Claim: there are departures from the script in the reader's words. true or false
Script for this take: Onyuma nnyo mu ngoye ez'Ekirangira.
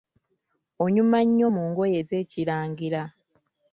false